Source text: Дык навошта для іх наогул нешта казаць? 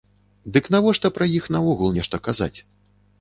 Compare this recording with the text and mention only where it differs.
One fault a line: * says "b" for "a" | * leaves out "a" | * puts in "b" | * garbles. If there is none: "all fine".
* says "пра" for "для"